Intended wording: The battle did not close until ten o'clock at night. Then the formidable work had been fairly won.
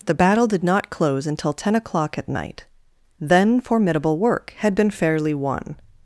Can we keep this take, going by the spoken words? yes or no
no